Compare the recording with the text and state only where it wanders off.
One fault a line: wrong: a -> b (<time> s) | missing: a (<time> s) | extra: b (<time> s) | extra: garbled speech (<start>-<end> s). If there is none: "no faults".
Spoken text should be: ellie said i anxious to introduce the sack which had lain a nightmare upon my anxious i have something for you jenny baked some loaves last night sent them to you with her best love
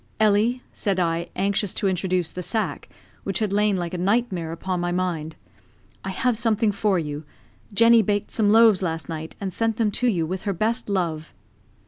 extra: like (3.8 s)
wrong: anxious -> mind (4.9 s)
extra: and (9.4 s)